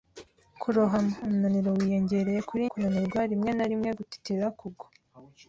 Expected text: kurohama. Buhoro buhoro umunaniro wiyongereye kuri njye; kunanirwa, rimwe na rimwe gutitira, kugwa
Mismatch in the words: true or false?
true